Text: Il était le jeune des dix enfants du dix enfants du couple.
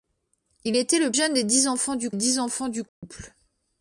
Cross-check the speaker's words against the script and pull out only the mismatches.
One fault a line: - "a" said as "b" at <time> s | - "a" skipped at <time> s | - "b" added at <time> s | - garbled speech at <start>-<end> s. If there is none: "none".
none